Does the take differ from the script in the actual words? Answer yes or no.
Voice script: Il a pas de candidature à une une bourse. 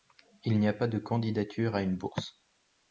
yes